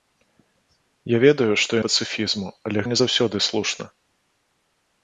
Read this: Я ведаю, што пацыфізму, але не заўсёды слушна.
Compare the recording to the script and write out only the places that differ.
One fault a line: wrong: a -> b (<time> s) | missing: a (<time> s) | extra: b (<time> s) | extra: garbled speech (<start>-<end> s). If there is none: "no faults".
no faults